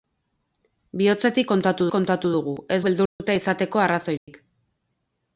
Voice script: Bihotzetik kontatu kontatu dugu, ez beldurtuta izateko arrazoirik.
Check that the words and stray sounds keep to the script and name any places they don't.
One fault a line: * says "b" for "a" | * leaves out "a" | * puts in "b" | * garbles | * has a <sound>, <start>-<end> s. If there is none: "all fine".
* has a dropout, 3.1-3.2 s
* has a dropout, 4.2-4.3 s